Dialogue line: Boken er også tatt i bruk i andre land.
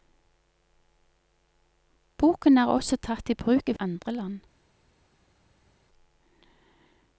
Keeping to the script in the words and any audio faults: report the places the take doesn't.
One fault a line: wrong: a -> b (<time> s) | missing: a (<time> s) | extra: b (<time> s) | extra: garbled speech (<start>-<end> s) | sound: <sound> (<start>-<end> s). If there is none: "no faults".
no faults